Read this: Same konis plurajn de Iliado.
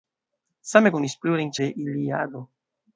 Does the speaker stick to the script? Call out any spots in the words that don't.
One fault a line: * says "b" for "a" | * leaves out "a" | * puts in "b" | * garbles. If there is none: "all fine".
all fine